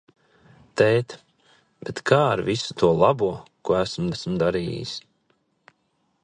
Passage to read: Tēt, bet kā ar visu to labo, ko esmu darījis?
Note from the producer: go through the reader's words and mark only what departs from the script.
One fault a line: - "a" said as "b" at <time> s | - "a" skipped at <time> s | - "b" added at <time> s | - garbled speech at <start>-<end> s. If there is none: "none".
- "esmu" added at 4.1 s